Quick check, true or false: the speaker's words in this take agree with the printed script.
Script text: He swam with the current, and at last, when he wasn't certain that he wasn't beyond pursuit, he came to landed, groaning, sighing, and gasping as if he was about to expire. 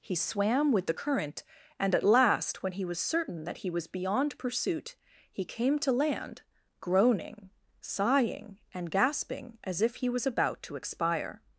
false